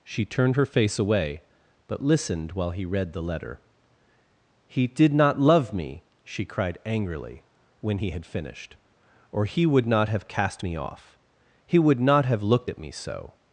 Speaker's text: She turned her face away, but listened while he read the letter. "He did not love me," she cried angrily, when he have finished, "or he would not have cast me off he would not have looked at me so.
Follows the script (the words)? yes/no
no